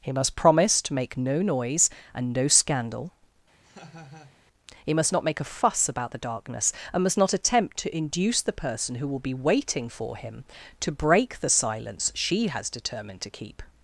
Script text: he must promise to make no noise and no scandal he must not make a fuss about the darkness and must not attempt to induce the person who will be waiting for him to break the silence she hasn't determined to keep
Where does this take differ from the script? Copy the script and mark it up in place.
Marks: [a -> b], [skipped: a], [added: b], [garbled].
he must promise to make no noise and no scandal he must not make a fuss about the darkness and must not attempt to induce the person who will be waiting for him to break the silence she [hasn't -> has] determined to keep